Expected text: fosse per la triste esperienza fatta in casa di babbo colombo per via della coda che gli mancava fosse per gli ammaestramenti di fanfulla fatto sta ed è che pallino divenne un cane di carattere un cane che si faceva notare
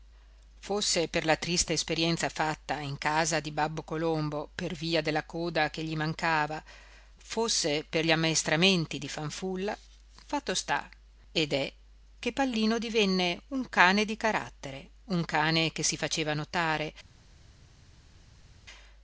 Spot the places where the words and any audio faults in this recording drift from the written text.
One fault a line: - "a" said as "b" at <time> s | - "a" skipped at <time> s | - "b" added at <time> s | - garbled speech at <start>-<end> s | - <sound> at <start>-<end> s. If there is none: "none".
none